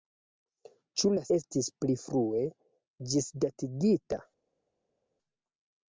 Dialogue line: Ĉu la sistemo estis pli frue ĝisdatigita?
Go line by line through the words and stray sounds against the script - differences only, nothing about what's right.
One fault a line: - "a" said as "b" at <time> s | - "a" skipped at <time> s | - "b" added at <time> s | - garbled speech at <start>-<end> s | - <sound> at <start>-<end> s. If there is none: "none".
- "sistemo" skipped at 1.2 s